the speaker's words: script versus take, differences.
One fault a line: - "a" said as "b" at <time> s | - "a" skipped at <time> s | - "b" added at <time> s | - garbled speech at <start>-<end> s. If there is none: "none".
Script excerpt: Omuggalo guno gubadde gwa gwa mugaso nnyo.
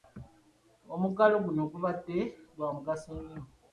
- "gwa" skipped at 2.7 s